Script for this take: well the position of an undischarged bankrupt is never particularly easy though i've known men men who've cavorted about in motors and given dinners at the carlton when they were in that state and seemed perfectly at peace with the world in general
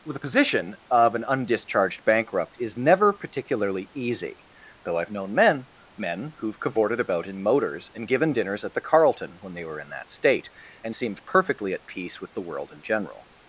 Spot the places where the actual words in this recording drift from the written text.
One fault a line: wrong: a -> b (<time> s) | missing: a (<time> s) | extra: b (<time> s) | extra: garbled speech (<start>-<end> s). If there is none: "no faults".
no faults